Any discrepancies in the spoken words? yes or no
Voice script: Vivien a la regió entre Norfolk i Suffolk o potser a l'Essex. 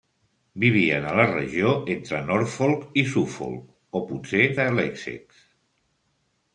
no